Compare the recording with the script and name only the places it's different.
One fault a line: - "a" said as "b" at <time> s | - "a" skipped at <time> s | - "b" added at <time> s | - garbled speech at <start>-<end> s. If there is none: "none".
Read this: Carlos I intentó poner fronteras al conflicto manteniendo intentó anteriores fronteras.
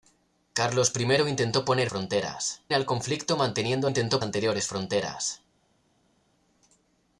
none